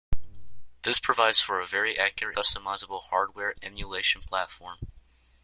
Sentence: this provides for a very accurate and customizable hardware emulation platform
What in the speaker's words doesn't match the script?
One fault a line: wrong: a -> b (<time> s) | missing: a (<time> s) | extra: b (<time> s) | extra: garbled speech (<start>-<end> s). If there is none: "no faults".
missing: and (2.4 s)